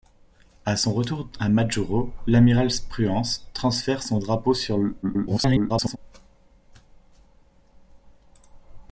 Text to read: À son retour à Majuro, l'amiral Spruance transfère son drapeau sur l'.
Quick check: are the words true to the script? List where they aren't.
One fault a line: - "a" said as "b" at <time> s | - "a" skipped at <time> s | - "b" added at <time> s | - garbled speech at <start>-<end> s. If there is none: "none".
- garbled speech at 5.0-6.0 s